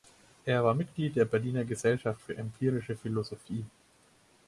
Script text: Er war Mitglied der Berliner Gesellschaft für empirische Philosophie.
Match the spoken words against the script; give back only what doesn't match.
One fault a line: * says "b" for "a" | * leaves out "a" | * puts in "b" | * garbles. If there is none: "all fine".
all fine